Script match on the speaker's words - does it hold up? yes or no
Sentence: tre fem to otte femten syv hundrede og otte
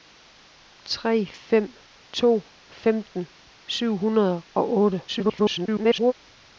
no